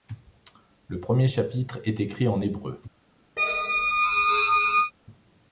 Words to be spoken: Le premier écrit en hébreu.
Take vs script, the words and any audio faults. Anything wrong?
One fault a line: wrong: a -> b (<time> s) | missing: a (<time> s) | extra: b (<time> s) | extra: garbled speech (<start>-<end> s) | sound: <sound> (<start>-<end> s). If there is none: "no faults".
extra: chapitre est (1.3 s)
sound: squeak (3.4-4.9 s)